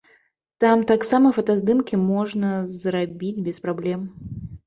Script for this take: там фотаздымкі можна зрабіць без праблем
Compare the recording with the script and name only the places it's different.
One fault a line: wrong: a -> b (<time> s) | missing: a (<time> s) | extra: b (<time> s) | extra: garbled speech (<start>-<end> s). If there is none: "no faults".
extra: таксама (0.9 s)